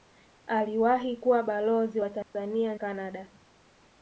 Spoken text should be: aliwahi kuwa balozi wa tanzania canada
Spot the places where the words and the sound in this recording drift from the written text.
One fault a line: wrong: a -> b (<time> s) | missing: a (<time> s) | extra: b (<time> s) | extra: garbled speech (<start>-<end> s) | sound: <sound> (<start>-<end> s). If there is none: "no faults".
sound: dropout (2.2-2.3 s)